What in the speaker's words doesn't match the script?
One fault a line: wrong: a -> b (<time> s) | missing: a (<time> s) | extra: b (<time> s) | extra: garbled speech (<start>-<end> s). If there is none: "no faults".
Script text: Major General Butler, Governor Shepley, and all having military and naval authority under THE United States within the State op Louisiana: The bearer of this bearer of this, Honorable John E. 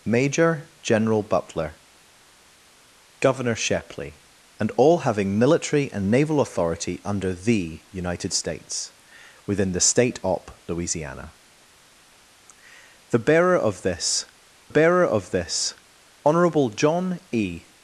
no faults